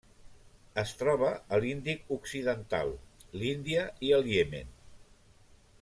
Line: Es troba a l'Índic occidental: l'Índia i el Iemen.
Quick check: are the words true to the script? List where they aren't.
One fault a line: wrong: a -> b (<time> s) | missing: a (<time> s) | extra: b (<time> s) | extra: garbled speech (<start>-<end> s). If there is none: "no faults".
no faults